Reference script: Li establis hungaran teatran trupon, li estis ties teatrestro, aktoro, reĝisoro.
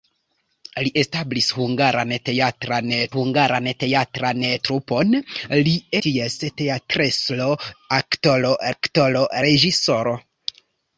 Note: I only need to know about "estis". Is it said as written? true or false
false